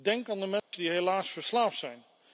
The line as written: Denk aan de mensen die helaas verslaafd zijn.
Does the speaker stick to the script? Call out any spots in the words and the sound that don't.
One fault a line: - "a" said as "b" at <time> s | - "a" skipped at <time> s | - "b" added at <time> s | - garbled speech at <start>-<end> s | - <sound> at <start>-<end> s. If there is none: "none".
- dropout at 0.6-0.7 s